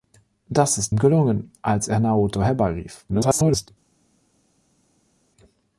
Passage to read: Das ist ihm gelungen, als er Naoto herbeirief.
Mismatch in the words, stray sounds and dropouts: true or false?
true